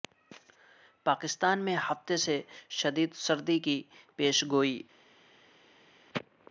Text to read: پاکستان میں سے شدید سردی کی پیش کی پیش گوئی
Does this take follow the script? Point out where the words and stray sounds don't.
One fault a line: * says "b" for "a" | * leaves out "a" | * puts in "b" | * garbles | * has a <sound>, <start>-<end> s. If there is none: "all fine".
* puts in "ہفتے"
* leaves out "کی پیش"